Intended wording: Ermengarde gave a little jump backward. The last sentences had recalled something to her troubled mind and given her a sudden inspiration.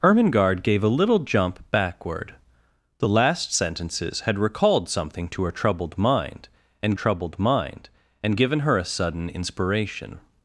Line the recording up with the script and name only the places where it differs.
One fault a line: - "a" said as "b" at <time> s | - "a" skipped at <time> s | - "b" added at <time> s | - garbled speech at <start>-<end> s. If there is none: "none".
- "troubled mind and" added at 6.9 s